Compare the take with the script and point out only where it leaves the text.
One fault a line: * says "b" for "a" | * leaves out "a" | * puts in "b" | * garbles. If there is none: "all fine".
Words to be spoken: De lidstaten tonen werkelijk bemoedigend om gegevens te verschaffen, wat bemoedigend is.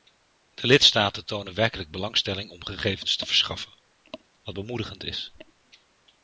* says "belangstelling" for "bemoedigend"